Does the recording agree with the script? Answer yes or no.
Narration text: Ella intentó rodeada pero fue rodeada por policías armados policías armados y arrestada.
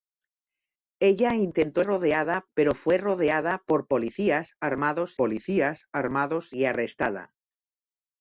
yes